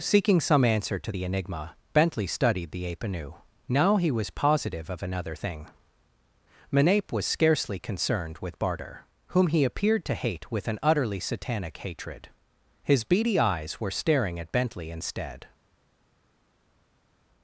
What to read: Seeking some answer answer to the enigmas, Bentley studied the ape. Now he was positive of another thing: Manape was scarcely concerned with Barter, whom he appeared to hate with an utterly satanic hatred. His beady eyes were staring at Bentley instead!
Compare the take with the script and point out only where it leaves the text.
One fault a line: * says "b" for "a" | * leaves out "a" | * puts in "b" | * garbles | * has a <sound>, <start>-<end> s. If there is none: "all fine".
* leaves out "answer"
* says "enigma" for "enigmas"
* puts in "anew"